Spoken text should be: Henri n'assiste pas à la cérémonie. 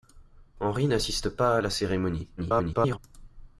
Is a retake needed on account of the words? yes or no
yes